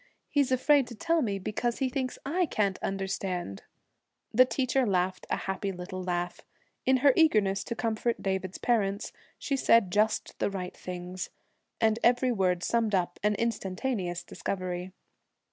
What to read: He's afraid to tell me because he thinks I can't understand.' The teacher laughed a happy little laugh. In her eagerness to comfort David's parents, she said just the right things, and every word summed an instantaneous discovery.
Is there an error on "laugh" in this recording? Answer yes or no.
no